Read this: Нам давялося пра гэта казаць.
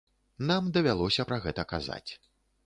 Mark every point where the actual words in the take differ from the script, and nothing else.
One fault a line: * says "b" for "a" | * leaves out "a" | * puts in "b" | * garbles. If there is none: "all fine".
all fine